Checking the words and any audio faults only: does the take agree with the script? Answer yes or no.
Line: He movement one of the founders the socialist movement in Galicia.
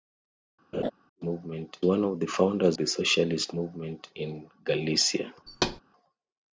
no